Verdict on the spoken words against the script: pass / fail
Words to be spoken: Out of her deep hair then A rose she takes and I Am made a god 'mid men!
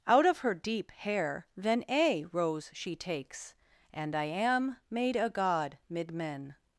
pass